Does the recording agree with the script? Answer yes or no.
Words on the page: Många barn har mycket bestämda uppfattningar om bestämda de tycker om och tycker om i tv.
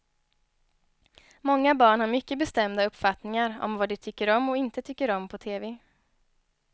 no